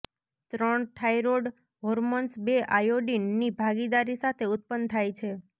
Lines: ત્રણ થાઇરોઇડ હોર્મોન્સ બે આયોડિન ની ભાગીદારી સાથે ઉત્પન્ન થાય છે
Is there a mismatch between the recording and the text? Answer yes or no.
no